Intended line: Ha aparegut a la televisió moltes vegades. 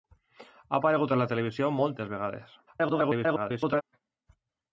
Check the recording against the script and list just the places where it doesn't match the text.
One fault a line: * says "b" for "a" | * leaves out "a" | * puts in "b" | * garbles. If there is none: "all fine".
* garbles